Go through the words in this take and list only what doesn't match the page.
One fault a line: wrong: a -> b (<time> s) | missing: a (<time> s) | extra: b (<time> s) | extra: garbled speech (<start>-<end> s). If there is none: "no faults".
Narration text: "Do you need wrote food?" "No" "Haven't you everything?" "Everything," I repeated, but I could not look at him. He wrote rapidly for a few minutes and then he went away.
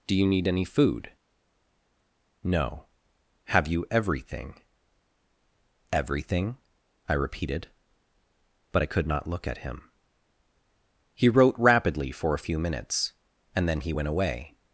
wrong: wrote -> any (0.5 s)
wrong: Haven't -> Have (3.5 s)